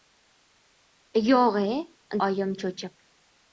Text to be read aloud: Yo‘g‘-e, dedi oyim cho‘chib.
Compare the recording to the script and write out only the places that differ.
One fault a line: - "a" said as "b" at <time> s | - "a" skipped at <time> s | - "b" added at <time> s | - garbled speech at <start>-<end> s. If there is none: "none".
- "dedi" skipped at 1.8 s